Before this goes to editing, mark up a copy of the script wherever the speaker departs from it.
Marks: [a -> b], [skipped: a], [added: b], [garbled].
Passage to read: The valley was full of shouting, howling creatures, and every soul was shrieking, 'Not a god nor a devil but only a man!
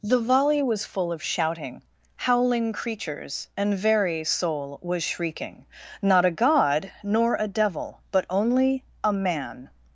The [valley -> volley] was full of shouting, howling creatures, and [every -> very] soul was shrieking, 'Not a god nor a devil but only a man!